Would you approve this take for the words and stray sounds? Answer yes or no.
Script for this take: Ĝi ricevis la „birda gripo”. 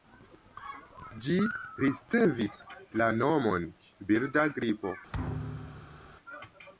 no